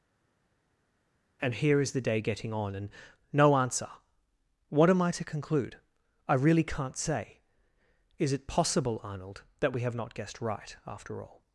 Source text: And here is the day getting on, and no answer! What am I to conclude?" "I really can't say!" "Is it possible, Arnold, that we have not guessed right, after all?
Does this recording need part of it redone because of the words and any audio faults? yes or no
no